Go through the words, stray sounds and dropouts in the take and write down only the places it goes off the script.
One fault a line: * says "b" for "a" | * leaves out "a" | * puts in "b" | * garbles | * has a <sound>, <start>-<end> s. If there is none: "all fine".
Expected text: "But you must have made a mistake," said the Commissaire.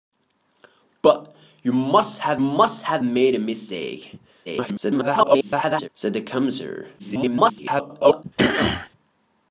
* puts in "must have"
* garbles
* garbles
* has a throat clearing, 8.4-8.9 s